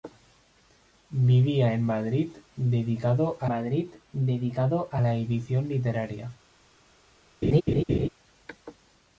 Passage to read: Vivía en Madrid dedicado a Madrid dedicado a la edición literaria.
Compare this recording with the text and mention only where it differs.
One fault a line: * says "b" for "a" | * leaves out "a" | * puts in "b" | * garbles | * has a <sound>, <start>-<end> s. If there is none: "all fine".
* has a laugh, 7.4-8.1 s